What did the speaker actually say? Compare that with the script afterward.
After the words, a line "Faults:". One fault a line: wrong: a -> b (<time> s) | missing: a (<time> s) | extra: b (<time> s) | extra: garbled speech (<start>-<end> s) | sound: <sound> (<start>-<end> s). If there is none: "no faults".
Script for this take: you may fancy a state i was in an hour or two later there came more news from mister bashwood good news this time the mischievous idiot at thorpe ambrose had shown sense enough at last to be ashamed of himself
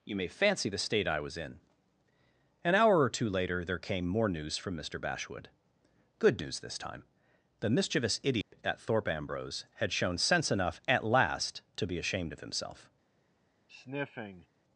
you may fancy the state i was in an hour or two later there came more news from mister bashwood good news this time the mischievous idiot at thorpe ambrose had shown sense enough at last to be ashamed of himself
Faults:
wrong: a -> the (0.7 s)
sound: dropout (8.4-8.5 s)
sound: sniff (13.7-14.5 s)